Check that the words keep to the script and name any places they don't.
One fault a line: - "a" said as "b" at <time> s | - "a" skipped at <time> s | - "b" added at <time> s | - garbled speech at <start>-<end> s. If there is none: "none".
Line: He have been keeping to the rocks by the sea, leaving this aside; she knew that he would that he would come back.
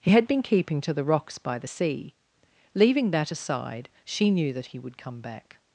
- "have" said as "had" at 0.1 s
- "this" said as "that" at 3.1 s
- "that he would" skipped at 5.0 s